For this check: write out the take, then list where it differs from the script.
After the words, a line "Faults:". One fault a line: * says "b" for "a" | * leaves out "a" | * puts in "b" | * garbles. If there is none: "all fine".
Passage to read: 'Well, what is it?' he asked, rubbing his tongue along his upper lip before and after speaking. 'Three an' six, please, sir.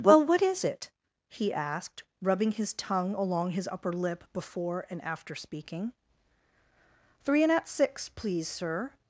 'Well, what is it?' he asked, rubbing his tongue along his upper lip before and after speaking. 'Three and at' six, please, sir.
Faults:
* says "and at" for "an"